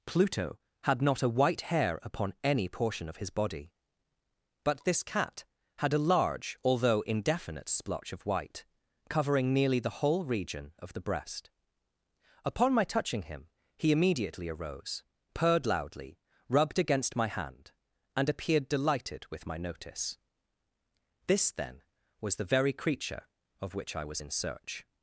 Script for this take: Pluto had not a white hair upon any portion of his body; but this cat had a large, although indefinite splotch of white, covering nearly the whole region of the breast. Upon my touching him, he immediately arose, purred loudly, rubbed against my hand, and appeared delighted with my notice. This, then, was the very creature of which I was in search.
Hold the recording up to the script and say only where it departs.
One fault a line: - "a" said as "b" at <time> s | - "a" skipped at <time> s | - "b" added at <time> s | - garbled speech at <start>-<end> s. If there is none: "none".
none